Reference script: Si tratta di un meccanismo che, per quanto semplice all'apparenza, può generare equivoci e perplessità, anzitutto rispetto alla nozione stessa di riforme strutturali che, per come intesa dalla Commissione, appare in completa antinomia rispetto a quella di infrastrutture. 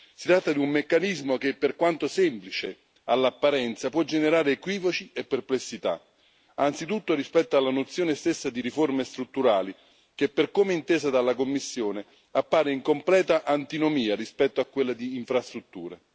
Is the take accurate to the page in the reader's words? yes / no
yes